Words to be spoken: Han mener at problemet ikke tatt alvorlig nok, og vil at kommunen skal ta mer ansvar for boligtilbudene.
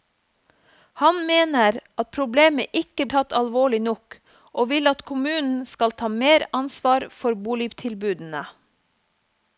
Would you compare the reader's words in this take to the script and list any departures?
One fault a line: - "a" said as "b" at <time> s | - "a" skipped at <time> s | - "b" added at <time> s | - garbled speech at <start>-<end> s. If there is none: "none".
none